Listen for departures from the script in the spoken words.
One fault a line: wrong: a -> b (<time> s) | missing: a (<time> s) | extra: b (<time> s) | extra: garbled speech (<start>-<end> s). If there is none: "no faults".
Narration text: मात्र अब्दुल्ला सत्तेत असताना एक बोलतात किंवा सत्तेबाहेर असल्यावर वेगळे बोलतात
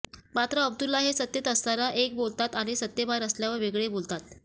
extra: हे (1.0 s)
wrong: किंवा -> आणि (2.5 s)